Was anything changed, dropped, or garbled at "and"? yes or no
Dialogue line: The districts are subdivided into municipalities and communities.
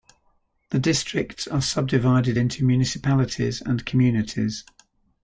no